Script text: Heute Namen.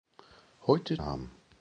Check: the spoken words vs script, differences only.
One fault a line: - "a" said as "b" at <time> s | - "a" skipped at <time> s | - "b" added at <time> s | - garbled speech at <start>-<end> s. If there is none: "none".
none